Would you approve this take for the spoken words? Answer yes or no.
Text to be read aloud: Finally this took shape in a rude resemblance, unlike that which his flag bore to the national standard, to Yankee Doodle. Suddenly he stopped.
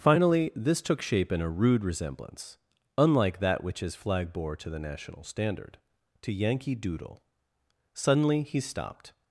yes